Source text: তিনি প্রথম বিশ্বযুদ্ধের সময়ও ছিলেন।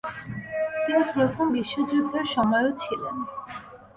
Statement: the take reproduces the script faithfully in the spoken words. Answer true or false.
true